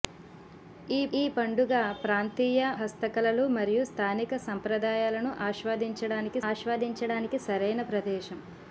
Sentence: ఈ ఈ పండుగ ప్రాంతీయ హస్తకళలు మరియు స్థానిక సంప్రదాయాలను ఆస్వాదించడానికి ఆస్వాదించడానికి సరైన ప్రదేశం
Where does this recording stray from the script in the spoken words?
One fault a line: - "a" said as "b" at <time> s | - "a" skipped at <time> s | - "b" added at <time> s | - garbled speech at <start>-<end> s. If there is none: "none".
none